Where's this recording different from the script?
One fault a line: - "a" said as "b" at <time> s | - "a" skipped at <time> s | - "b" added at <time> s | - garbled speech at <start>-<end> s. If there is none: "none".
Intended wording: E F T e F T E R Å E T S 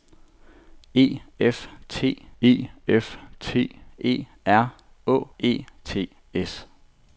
none